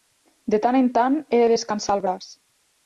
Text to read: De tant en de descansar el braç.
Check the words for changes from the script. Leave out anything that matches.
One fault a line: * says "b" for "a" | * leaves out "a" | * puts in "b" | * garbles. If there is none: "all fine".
* puts in "tant he"